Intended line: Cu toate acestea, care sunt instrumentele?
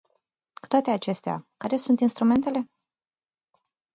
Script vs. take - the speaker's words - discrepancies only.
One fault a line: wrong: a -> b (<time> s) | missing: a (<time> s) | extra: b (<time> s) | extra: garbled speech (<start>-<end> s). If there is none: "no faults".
no faults